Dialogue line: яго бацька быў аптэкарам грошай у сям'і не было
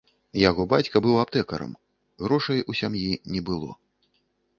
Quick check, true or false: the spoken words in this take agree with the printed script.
true